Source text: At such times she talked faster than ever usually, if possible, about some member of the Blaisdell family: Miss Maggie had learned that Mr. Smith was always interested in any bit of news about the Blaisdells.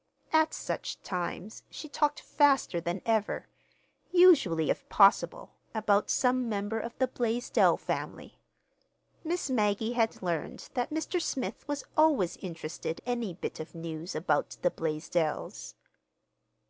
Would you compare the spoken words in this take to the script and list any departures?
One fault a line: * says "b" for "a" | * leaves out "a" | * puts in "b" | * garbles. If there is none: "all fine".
* leaves out "in"